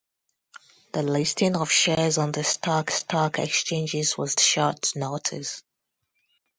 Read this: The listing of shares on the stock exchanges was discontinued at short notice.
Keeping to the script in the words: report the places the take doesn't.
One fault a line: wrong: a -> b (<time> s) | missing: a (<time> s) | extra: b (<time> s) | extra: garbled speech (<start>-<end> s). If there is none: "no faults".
extra: stock (2.9 s)
missing: discontinued at (4.4 s)